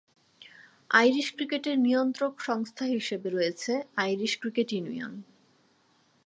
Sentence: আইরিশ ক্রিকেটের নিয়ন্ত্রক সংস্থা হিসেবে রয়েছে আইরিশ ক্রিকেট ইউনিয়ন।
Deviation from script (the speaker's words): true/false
false